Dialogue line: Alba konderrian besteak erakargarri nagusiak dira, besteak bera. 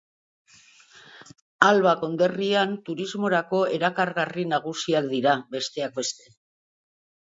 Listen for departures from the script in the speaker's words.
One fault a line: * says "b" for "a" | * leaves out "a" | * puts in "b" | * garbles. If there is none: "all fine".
* says "turismorako" for "besteak"
* says "beste" for "bera"